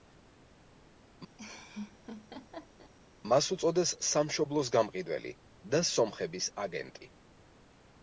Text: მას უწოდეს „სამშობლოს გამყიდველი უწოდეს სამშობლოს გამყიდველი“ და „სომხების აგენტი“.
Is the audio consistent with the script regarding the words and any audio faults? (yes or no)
no